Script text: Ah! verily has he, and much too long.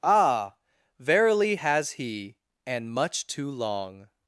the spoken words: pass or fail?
pass